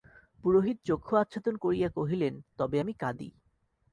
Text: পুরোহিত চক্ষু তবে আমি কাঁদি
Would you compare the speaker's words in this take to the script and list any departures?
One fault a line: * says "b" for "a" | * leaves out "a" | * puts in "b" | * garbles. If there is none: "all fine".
* puts in "আচ্ছাদন করিয়া কহিলেন"